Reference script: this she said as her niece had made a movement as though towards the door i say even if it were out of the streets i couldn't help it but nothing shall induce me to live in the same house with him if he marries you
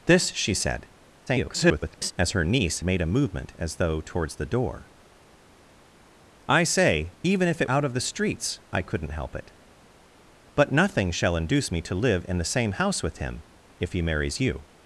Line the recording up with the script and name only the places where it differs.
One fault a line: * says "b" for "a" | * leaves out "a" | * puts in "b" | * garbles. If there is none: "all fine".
* garbles
* leaves out "had"
* leaves out "were"